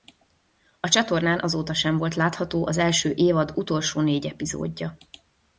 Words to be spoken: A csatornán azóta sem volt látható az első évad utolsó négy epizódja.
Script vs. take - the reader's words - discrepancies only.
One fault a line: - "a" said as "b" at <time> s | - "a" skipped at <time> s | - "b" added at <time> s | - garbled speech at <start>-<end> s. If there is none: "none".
none